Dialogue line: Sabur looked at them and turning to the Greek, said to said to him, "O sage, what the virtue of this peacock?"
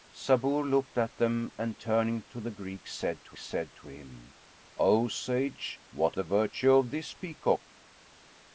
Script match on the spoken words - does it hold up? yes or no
yes